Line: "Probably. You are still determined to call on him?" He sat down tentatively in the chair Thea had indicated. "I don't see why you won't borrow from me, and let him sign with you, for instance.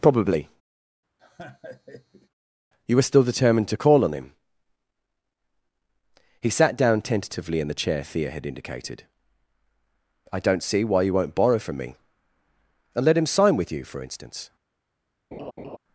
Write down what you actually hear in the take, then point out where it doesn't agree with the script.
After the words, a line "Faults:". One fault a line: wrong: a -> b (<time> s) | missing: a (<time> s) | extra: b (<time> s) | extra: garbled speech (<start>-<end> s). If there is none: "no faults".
"Probably. You were still determined to call on him?" He sat down tentatively in the chair Thea had indicated. "I don't see why you won't borrow from me, and let him sign with you, for instance.
Faults:
wrong: are -> were (3.0 s)